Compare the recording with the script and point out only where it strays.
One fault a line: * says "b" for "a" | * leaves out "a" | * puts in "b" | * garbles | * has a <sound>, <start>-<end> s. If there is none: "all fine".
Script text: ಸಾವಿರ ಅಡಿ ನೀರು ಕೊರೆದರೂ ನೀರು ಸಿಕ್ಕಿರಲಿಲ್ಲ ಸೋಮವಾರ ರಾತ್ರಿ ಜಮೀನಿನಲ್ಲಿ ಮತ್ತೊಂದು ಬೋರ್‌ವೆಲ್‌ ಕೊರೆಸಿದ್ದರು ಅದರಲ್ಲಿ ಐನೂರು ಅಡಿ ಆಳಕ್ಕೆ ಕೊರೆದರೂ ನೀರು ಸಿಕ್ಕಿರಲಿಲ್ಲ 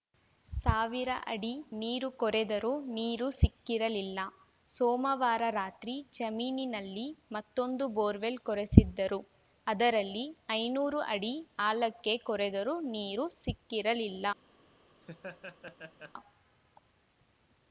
* has a laugh, 15.0-16.1 s